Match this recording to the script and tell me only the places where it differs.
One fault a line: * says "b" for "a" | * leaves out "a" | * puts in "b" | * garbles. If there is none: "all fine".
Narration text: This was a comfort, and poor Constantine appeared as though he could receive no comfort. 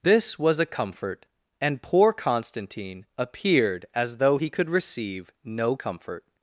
all fine